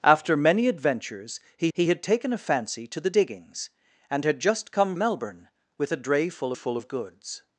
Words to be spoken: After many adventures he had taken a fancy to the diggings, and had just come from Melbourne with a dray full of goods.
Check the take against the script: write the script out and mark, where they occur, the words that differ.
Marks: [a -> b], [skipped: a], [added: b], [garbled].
After many adventures he [added: he] had taken a fancy to the diggings, and had just come [skipped: from] Melbourne with a dray full [added: full] of goods.